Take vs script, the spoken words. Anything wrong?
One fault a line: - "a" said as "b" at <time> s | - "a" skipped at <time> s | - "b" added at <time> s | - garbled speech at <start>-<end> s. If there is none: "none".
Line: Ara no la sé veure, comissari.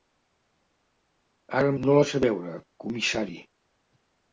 none